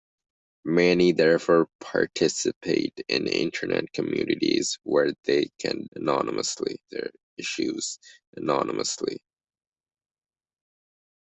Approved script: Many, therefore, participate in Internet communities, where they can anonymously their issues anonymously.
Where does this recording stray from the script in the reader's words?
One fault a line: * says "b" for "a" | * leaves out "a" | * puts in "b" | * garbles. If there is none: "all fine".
all fine